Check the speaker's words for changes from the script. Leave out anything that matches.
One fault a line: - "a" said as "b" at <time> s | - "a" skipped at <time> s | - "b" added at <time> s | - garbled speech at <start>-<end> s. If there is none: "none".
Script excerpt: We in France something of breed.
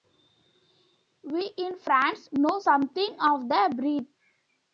- "know" added at 2.3 s
- "the" added at 3.5 s